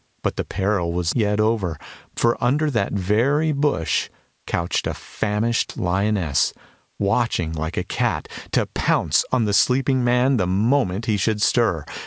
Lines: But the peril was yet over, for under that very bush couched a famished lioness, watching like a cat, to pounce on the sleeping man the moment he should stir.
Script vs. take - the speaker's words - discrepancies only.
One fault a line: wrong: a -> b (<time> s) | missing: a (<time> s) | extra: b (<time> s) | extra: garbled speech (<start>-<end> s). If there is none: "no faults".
no faults